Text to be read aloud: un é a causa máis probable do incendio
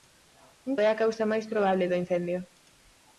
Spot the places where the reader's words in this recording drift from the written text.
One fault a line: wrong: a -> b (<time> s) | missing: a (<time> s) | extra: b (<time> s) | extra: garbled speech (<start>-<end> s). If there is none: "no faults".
no faults